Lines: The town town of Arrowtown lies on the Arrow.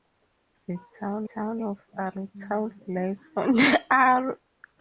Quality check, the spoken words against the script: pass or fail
pass